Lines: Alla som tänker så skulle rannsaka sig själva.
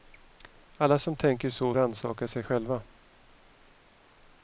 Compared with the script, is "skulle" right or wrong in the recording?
wrong